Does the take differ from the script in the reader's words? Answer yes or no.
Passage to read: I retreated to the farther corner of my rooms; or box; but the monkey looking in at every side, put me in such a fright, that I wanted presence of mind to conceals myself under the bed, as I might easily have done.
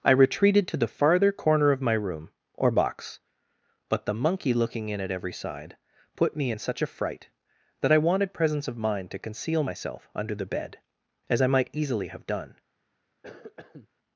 yes